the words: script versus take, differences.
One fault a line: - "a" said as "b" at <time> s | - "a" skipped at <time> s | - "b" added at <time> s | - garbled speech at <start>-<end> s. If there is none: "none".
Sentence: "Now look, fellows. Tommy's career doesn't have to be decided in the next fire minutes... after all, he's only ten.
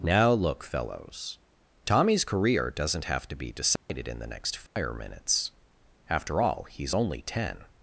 none